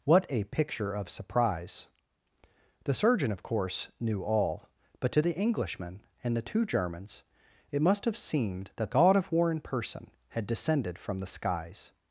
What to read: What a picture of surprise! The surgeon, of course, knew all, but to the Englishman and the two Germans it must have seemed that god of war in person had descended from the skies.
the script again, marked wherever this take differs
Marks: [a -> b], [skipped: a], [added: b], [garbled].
What a picture of surprise! The surgeon, of course, knew all, but to the Englishman and the two Germans it must have seemed that god of war in person had descended from the skies.